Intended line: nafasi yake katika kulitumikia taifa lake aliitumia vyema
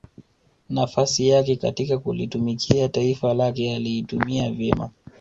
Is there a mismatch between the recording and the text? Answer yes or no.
no